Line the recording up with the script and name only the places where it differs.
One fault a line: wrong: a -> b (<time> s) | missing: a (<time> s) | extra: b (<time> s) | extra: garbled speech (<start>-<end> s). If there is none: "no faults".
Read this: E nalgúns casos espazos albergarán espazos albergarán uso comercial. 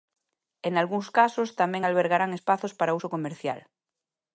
wrong: espazos -> tamén (1.6 s)
wrong: albergarán -> para (2.8 s)